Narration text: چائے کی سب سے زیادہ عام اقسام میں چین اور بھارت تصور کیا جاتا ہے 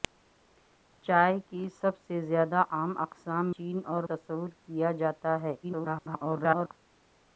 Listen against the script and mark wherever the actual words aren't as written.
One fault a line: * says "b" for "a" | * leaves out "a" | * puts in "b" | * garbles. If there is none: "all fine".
* leaves out "میں"
* leaves out "بھارت"
* garbles